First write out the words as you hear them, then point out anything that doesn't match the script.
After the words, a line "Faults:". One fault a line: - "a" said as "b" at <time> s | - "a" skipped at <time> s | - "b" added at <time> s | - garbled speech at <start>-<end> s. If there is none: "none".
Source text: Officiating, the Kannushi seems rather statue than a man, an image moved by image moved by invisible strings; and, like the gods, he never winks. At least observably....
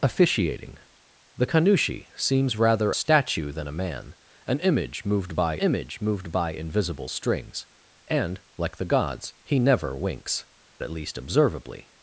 Officiating, the Kannushi seems rather statue than a man, an image moved by image moved by invisible strings; and, like the gods, he never winks. At least observably....
Faults:
none